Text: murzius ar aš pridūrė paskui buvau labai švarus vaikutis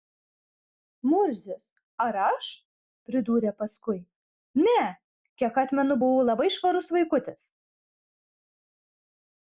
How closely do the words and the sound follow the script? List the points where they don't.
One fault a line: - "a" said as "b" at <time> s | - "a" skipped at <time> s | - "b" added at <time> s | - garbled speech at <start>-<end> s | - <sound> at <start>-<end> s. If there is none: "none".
- "ne kiek atmenu" added at 4.6 s